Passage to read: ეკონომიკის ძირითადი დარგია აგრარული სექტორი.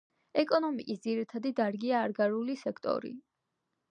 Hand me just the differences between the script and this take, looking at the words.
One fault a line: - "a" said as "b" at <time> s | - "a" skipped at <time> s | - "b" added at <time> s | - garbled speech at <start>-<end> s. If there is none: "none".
none